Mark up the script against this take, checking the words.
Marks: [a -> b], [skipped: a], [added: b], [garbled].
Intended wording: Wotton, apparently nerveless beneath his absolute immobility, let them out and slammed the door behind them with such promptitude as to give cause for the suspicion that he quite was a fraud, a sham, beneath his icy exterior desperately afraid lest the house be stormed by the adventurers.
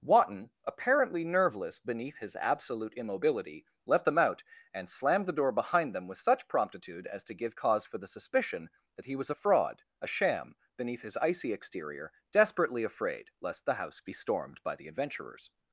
Wotton, apparently nerveless beneath his absolute immobility, let them out and slammed the door behind them with such promptitude as to give cause for the suspicion that he [skipped: quite] was a fraud, a sham, beneath his icy exterior desperately afraid lest the house be stormed by the adventurers.